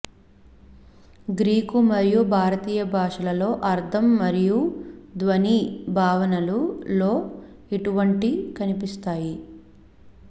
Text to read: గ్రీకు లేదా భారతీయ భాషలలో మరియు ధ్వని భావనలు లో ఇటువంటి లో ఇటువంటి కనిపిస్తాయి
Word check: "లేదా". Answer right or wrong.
wrong